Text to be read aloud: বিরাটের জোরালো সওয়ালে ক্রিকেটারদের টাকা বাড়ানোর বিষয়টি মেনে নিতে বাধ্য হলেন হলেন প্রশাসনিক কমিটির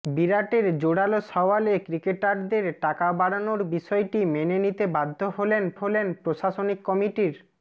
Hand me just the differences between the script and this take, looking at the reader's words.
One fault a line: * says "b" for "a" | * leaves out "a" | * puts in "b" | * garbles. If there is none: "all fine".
all fine